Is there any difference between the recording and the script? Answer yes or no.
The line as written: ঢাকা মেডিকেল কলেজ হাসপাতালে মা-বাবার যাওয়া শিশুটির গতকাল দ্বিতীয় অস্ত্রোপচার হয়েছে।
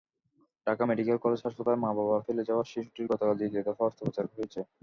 yes